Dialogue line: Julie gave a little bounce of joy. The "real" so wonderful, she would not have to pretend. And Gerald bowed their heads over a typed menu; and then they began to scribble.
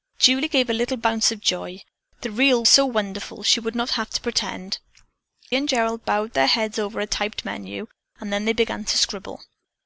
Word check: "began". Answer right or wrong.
right